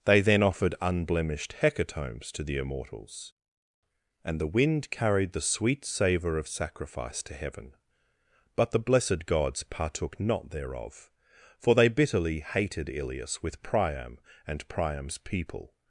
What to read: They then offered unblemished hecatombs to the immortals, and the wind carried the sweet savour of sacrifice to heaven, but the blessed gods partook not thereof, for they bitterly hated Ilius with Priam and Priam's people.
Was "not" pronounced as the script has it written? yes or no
yes